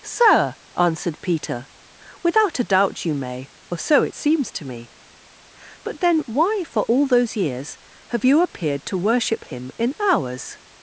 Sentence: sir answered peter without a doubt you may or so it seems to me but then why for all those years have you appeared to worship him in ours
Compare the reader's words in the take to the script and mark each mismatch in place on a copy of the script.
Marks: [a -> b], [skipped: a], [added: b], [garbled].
sir answered peter without a doubt you may or so it seems to me but then why for all those years have you appeared to worship him in ours